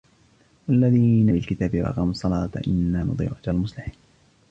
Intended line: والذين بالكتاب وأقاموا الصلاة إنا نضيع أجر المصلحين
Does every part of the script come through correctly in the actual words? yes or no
yes